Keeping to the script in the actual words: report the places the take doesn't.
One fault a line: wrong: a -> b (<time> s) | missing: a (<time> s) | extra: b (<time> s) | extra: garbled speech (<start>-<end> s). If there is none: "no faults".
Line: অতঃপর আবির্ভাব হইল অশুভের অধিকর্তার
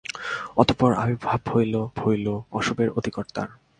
extra: হইল (2.0 s)